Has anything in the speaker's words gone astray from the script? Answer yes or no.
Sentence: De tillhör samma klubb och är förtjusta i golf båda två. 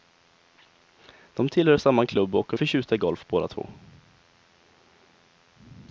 no